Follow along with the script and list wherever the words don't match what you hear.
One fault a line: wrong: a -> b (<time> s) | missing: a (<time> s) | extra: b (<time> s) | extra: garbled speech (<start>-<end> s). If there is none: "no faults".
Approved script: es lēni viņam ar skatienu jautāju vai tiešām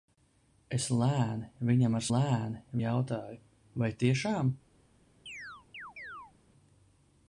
wrong: skatienu -> lēni (2.1 s)